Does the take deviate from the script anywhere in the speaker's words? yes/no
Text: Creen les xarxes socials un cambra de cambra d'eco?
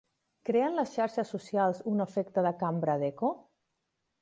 yes